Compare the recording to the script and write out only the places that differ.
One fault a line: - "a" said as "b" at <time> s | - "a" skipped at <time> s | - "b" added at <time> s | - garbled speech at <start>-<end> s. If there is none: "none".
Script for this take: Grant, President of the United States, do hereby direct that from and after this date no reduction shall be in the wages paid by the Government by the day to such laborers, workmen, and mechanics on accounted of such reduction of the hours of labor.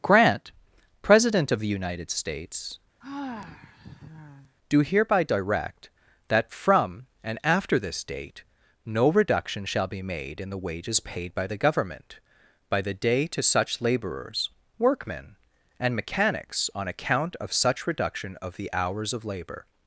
- "made" added at 10.0 s
- "accounted" said as "account" at 16.9 s